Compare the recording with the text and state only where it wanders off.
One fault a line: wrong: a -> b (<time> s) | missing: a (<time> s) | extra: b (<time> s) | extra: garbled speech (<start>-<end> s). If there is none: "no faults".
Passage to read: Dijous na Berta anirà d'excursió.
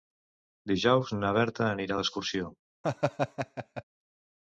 no faults